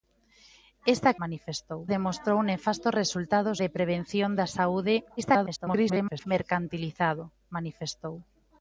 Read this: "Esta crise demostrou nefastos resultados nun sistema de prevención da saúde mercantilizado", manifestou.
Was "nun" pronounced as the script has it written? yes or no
no